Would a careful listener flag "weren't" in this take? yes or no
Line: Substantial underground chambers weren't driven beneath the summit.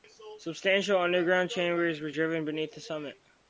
yes